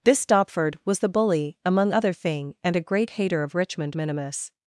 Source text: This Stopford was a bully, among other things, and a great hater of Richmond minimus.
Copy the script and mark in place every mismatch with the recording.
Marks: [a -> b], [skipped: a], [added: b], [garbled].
This Stopford was [a -> the] bully, among other [things, -> thing] and a great hater of Richmond minimus.